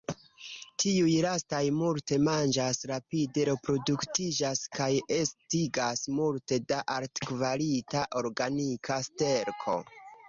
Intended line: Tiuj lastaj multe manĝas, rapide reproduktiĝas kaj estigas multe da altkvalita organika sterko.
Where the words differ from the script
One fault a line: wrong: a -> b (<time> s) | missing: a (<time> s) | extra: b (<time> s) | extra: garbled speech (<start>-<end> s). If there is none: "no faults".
no faults